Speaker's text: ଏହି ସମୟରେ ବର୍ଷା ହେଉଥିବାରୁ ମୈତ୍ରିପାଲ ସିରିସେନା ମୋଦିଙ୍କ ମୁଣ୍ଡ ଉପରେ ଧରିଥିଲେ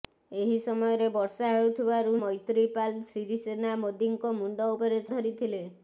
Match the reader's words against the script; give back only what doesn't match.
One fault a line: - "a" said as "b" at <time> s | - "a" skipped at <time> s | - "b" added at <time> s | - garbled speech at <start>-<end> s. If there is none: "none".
none